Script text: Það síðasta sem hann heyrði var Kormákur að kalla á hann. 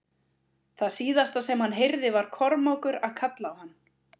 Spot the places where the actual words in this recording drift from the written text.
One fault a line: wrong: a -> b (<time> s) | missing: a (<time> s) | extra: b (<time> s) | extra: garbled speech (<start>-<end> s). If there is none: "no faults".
no faults